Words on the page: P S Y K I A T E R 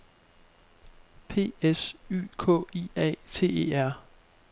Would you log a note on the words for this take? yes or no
no